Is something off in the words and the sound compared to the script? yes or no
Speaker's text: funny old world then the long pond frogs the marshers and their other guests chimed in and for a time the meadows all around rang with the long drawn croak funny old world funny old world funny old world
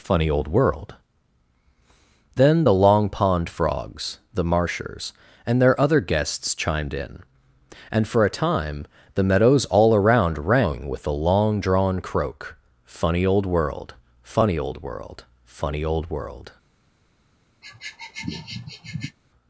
yes